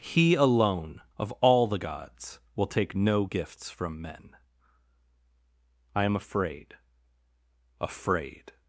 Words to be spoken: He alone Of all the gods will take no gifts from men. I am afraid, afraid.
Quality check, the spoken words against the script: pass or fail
pass